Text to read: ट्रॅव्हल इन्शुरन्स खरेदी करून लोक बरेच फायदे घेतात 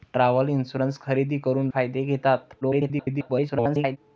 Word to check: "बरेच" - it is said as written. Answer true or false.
false